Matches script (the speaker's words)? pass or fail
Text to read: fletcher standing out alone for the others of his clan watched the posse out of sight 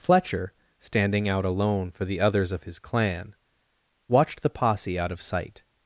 pass